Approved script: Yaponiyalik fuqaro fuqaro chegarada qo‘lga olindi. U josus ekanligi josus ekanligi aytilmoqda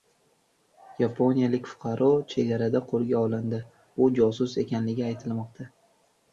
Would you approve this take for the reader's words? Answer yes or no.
no